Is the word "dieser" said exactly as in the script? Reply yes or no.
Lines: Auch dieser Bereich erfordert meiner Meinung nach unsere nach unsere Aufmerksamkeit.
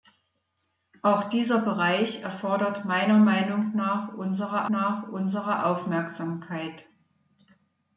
yes